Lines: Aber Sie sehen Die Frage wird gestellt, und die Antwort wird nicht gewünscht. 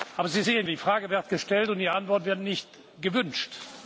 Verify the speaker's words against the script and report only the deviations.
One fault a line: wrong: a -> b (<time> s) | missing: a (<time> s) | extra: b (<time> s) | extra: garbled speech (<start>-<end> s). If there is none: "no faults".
no faults